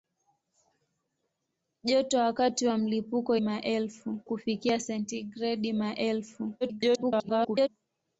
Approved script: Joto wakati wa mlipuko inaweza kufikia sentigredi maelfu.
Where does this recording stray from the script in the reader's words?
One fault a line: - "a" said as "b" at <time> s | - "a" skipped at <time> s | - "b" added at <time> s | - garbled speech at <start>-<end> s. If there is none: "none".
- "inaweza" said as "maelfu" at 3.4 s
- garbled speech at 6.6-7.7 s